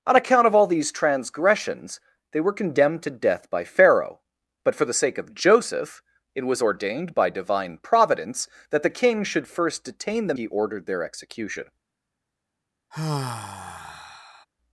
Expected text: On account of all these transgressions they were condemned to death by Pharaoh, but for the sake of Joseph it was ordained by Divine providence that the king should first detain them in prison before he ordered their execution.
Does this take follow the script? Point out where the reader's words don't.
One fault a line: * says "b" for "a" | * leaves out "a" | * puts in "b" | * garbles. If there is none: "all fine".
* leaves out "in prison before"